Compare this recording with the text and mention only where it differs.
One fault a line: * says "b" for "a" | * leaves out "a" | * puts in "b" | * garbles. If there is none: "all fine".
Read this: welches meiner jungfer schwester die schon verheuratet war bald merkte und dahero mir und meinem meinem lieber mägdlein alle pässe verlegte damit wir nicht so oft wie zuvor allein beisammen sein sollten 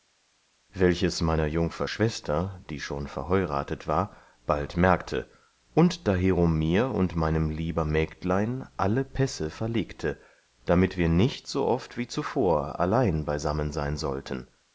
* leaves out "meinem"